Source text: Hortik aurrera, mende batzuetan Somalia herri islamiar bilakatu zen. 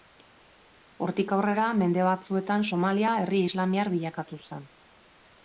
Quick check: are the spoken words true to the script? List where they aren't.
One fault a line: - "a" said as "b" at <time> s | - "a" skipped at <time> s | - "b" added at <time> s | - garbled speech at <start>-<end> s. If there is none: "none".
none